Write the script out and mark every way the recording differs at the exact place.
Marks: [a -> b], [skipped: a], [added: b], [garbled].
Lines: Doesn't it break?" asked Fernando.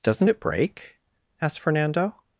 Doesn't it break?" asked Fernando.